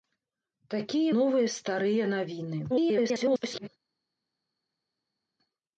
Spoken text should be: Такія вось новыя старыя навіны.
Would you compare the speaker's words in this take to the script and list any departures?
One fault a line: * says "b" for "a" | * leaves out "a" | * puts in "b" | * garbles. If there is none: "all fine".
* leaves out "вось"
* garbles